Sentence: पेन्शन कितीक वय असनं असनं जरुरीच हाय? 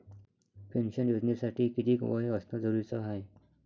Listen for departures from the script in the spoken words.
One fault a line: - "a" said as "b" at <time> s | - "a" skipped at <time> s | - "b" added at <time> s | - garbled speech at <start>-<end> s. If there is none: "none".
- "योजनेसाठी" added at 1.1 s
- "असनं" skipped at 2.6 s